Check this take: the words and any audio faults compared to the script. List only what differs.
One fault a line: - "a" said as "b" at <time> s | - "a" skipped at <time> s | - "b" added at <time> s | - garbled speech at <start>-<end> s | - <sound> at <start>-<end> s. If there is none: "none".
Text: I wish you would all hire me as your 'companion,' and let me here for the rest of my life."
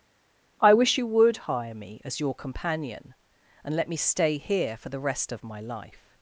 - "all" skipped at 1.4 s
- "stay" added at 4.0 s